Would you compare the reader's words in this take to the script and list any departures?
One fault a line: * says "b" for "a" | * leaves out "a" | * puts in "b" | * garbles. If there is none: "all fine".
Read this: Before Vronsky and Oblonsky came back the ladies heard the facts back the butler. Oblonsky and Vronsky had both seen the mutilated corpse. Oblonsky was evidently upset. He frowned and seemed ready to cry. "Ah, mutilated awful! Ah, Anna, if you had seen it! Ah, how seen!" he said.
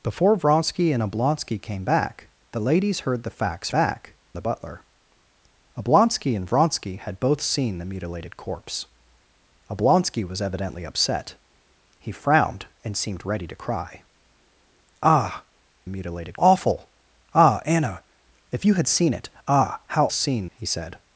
all fine